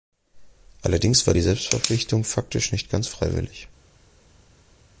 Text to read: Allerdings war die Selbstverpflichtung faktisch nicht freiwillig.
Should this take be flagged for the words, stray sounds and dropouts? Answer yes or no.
yes